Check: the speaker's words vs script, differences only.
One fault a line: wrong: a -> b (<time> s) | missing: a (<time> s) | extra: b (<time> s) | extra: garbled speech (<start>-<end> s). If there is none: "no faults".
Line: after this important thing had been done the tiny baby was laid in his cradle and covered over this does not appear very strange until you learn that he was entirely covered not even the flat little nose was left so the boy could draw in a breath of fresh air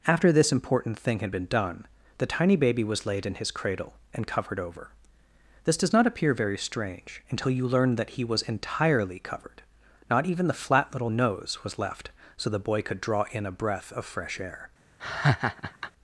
no faults